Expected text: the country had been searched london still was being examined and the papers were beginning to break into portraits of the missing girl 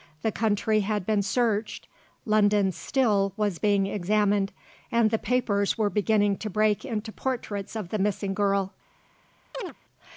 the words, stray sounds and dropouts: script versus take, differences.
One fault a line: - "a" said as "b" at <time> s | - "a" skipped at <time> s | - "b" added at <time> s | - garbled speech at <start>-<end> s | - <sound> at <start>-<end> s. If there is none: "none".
- chirp at 9.5-9.7 s